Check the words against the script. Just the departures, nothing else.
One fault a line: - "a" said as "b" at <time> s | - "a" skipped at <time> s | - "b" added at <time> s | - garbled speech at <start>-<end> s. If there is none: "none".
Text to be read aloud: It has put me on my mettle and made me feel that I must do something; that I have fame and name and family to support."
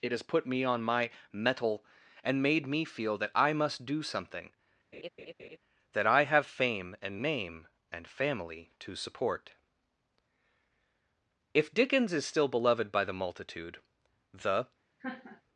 - "If Dickens is still beloved by the multitude the" added at 11.5 s